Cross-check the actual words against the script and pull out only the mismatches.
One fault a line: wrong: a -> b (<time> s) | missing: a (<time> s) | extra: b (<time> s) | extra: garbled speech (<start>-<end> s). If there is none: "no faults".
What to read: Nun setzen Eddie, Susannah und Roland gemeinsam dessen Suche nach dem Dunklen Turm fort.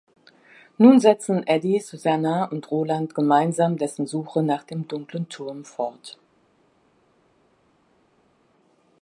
no faults